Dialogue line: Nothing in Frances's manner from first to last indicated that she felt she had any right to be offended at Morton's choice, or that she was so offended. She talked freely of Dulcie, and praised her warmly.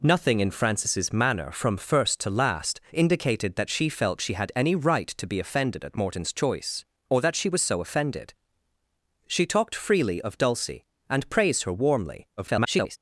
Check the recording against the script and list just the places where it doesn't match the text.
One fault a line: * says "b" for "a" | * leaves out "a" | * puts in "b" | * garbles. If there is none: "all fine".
* garbles